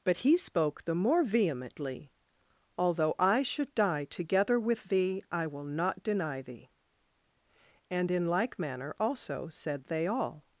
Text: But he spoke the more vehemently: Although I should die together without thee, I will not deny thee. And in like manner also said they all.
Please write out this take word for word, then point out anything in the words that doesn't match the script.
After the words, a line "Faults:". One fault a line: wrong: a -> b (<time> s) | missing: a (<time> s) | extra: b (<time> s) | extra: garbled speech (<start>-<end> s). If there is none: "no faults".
But he spoke the more vehemently: Although I should die together with thee, I will not deny thee. And in like manner also said they all.
Faults:
wrong: without -> with (4.6 s)